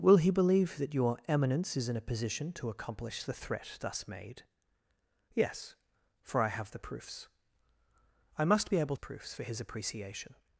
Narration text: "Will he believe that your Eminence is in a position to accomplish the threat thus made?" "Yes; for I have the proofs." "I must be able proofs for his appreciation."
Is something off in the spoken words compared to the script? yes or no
no